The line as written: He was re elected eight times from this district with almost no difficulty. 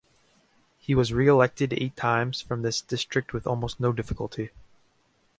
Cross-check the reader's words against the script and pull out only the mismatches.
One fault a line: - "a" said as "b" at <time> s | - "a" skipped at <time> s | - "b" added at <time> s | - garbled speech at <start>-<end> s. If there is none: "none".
none